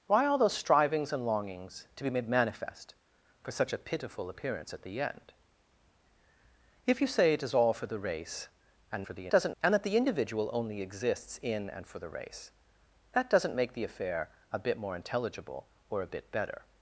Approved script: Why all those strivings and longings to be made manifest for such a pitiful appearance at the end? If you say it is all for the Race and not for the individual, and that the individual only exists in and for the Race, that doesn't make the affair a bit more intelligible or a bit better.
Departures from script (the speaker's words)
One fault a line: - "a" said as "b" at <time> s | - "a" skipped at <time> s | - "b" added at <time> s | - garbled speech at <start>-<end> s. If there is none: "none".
- "not" skipped at 9.1 s
- "individual" said as "doesn't" at 9.3 s